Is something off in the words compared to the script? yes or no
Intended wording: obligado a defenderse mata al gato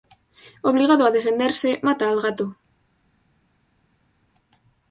no